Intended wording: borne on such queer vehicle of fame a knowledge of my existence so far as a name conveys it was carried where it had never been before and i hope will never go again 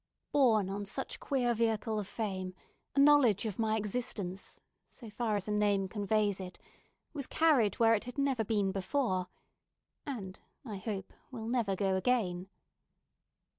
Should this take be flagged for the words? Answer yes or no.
no